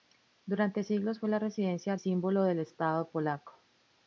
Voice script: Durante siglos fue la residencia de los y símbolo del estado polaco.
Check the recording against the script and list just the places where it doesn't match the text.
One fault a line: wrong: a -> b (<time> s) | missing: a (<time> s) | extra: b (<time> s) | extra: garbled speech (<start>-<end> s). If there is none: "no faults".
missing: de los y (1.9 s)